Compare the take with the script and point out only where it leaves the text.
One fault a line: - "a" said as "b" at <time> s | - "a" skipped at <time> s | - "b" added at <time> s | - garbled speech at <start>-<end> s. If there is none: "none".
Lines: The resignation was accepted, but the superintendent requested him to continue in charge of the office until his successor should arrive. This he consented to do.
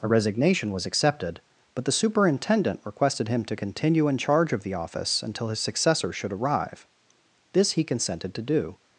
- "The" said as "A" at 0.0 s